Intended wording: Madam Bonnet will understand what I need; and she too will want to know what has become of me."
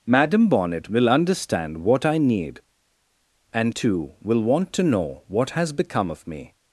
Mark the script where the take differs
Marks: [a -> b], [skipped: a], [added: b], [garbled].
Madam Bonnet will understand what I need; and [skipped: she] too will want to know what has become of me."